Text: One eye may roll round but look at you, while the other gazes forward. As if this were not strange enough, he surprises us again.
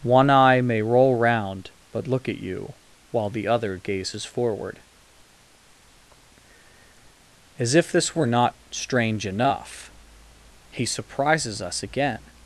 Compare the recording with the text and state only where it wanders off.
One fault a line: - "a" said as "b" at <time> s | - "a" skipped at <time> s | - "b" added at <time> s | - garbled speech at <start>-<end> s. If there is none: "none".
none